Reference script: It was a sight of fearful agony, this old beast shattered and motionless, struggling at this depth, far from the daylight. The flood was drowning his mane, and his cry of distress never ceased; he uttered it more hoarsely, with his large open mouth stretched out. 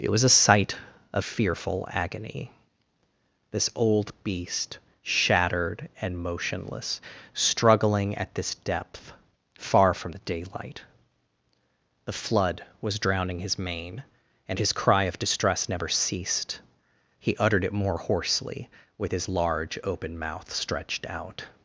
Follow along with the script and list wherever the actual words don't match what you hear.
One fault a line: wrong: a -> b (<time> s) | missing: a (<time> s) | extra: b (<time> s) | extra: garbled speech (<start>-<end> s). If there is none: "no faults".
no faults